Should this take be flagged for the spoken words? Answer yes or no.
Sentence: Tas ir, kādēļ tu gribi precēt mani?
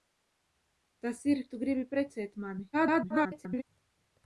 yes